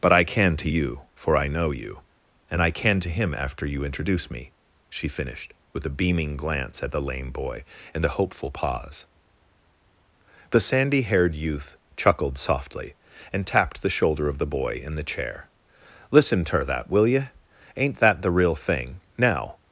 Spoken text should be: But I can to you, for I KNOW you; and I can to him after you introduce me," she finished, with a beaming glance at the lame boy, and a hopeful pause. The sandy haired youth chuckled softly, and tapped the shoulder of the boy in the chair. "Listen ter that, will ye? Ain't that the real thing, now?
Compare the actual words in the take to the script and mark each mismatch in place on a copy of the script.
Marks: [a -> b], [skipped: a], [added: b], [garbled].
But I can to you, for I KNOW you; and I can to him after you introduce me," she finished, with a beaming glance at the lame boy, and a hopeful pause. The sandy haired youth chuckled softly, and tapped the shoulder of the boy in the chair. "Listen ter that, will ye? Ain't that the real thing, now?